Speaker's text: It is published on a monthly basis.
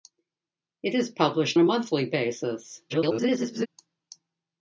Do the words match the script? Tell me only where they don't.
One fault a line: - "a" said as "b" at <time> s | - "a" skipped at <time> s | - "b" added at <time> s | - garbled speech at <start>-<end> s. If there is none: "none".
- "on" skipped at 1.6 s
- garbled speech at 2.9-3.7 s